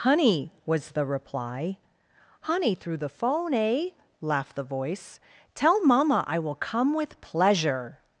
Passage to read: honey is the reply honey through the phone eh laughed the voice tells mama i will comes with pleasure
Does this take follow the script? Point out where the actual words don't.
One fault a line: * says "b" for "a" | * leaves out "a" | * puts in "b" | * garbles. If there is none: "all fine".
* says "was" for "is"
* says "tell" for "tells"
* says "come" for "comes"